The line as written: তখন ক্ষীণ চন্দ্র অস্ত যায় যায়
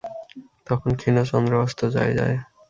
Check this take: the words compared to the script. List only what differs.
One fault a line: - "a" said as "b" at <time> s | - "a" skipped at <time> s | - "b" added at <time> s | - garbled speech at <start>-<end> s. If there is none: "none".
none